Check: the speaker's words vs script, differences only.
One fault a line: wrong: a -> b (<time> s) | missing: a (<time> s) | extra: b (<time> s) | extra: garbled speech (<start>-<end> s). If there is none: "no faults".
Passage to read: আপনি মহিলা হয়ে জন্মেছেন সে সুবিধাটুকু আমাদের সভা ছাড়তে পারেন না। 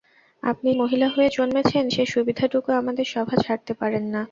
no faults